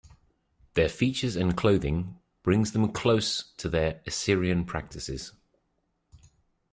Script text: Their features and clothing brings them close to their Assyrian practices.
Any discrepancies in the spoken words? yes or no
no